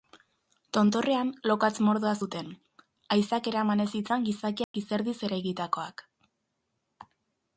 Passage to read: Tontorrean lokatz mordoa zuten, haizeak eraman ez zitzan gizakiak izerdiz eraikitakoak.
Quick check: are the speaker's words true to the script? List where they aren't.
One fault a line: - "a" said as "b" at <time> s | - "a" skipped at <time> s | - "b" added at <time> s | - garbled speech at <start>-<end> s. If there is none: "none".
none